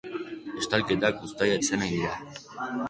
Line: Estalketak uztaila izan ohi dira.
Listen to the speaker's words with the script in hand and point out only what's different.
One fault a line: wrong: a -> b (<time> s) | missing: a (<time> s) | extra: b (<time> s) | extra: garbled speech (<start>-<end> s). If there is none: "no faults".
no faults